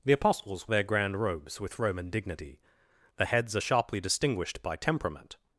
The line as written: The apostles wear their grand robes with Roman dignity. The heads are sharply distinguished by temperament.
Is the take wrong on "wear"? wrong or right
wrong